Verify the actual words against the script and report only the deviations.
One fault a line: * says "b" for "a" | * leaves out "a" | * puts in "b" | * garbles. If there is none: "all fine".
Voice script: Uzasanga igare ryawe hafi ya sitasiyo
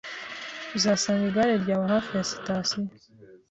all fine